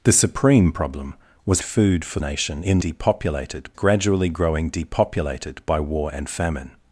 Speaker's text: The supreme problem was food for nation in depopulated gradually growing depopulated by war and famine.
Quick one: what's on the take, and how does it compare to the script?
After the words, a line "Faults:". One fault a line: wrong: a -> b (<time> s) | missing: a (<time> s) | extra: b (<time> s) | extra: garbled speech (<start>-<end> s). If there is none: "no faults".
The supreme problem was food for nation in depopulated gradually growing depopulated by war and famine.
Faults:
no faults